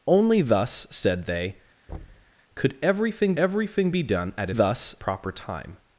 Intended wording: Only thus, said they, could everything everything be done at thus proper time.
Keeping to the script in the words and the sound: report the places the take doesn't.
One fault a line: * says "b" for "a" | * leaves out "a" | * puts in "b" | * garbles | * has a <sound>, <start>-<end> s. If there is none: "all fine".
* has a thud, 1.9-2.3 s